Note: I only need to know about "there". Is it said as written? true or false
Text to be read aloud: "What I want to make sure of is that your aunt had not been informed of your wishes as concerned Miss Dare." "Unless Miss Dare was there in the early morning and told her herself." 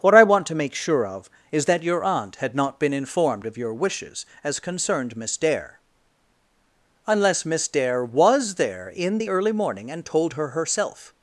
true